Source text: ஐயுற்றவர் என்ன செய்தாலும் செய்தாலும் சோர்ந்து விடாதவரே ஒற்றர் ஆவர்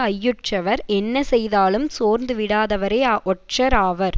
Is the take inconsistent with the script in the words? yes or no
yes